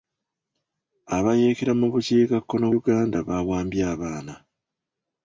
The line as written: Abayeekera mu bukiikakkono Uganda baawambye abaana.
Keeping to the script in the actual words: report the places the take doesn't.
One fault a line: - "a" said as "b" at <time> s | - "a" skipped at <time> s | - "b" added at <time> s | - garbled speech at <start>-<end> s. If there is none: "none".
none